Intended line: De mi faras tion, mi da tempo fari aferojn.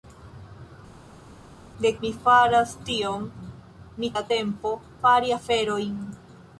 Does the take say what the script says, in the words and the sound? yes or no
yes